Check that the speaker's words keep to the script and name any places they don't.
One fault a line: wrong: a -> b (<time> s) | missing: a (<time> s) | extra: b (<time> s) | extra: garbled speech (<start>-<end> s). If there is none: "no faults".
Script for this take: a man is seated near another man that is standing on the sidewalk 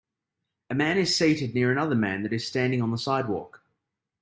no faults